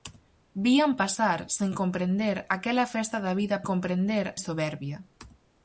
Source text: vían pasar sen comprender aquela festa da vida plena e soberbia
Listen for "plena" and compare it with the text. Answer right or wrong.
wrong